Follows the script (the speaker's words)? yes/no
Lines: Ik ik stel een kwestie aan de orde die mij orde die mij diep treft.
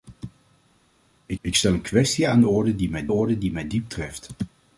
yes